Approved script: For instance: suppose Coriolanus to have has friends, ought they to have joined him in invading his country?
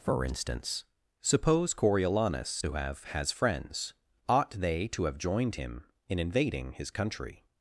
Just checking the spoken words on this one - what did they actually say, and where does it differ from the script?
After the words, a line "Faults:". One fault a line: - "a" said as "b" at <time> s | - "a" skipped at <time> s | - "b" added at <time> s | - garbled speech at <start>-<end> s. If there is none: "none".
For instance: suppose Coriolanus to have has friends, ought they to have joined him in invading his country?
Faults:
none